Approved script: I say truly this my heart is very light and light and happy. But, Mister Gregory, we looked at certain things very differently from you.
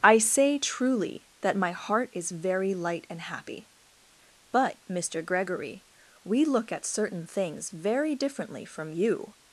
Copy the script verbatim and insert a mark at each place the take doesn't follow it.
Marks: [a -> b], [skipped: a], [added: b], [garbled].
I say truly [this -> that] my heart is very light and [skipped: light and] happy. But, Mister Gregory, we [looked -> look] at certain things very differently from you.